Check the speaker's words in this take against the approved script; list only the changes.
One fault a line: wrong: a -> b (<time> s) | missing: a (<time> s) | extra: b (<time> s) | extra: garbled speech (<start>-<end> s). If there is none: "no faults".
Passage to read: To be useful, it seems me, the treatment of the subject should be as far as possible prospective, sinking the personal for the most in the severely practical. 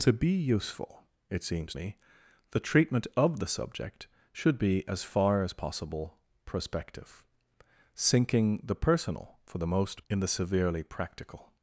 no faults